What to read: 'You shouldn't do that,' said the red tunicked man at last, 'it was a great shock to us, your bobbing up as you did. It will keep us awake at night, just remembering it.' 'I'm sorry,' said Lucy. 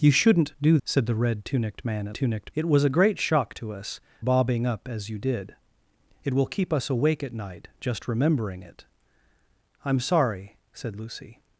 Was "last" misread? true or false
true